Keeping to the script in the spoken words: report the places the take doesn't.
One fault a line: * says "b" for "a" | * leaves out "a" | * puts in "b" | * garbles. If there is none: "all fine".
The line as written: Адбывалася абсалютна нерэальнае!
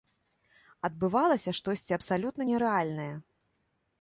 * puts in "штосьці"